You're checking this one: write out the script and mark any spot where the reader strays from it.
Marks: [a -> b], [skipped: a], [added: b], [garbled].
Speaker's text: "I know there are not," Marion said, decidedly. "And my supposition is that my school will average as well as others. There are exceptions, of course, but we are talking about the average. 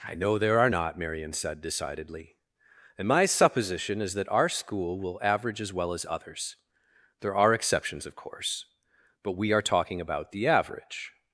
"I know there are not," Marion said, decidedly. "And my supposition is that [my -> our] school will average as well as others. There are exceptions, of course, but we are talking about the average.